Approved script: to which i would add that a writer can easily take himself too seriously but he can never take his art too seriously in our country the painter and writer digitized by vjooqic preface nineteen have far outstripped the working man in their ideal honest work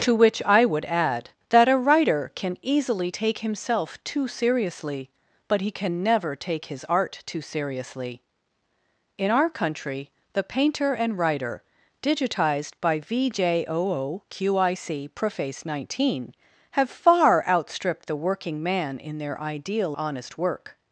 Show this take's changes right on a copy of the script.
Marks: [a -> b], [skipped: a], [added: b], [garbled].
to which i would add that a writer can easily take himself too seriously but he can never take his art too seriously in our country the painter and writer digitized by vjooqic preface nineteen have far outstripped the working man in their ideal honest work